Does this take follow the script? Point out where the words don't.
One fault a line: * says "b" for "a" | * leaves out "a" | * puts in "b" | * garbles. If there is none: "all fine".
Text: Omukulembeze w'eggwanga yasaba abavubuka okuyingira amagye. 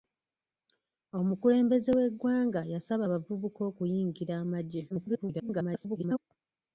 * garbles